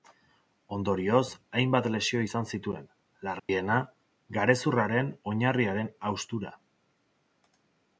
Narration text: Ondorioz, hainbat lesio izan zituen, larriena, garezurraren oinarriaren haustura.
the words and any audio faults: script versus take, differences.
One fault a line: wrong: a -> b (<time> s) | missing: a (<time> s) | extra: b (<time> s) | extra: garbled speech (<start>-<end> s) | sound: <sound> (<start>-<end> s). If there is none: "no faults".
sound: dropout (3.4-3.5 s)